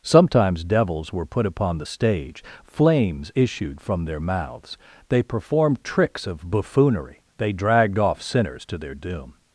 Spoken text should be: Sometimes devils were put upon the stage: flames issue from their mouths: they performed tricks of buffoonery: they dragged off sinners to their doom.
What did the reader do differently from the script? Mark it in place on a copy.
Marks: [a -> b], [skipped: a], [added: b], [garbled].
Sometimes devils were put upon the stage: flames [issue -> issued] from their mouths: they performed tricks of buffoonery: they dragged off sinners to their doom.